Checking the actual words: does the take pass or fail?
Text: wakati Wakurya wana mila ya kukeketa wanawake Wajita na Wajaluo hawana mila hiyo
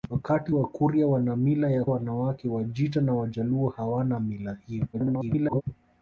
fail